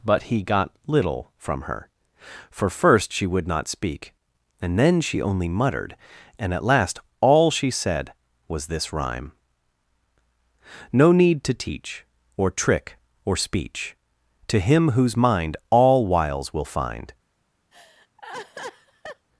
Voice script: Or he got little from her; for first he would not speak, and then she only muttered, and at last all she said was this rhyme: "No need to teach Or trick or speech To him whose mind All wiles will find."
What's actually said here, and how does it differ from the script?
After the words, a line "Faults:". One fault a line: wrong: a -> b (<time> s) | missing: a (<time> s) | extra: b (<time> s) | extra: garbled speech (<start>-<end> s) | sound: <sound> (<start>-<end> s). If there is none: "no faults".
But he got little from her; for first she would not speak, and then she only muttered, and at last all she said was this rhyme: "No need to teach Or trick or speech To him whose mind All wiles will find."
Faults:
wrong: Or -> But (0.0 s)
wrong: he -> she (3.1 s)
sound: laugh (17.7-19.3 s)